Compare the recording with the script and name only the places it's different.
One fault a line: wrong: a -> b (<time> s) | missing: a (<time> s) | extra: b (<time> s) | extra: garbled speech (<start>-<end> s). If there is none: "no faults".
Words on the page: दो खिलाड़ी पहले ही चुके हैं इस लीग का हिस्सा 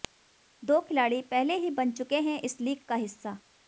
extra: बन (1.7 s)